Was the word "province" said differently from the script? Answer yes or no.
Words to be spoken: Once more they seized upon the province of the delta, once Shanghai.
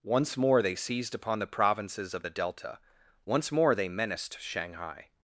yes